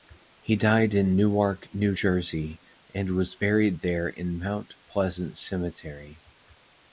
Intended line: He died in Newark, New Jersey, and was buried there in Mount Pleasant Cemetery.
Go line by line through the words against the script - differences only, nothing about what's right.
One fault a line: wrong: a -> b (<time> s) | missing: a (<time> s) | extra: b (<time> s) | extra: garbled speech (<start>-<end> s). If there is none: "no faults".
no faults